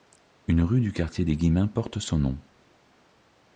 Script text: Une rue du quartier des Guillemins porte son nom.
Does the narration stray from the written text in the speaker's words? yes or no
no